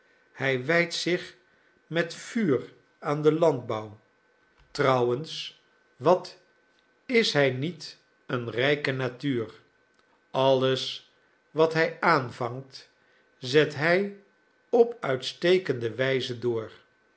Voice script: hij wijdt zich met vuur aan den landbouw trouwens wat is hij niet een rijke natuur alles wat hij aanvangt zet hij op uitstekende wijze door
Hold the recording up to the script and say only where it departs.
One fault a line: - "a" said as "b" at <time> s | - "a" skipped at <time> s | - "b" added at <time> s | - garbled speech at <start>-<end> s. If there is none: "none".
none